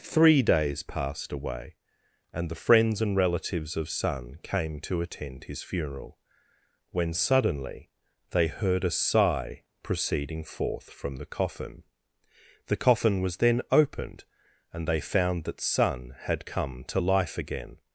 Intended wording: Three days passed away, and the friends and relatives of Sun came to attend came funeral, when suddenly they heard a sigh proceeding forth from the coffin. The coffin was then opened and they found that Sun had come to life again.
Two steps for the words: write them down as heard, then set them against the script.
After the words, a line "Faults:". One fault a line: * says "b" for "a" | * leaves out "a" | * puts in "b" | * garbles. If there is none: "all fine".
Three days passed away, and the friends and relatives of Sun came to attend his funeral, when suddenly they heard a sigh proceeding forth from the coffin. The coffin was then opened and they found that Sun had come to life again.
Faults:
* says "his" for "came"